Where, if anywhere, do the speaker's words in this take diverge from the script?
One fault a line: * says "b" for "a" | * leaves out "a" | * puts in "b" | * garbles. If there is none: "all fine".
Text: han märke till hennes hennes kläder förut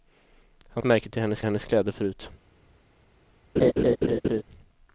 all fine